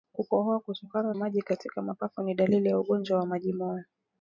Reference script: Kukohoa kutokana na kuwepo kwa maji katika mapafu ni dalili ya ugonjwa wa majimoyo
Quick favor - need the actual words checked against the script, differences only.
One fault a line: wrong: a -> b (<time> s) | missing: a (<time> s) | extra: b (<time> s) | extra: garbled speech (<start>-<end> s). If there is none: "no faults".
missing: na kuwepo kwa (1.1 s)